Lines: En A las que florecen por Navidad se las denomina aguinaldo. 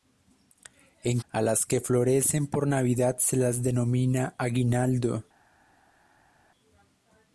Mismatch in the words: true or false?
false